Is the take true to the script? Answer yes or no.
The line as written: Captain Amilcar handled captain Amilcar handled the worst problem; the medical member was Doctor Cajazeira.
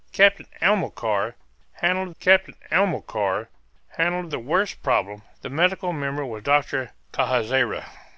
yes